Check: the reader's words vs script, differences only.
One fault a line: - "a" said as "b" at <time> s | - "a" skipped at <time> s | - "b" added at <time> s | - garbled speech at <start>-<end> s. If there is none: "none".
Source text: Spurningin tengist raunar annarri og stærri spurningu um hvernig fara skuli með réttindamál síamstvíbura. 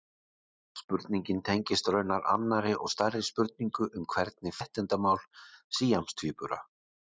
- "fara skuli með" skipped at 4.6 s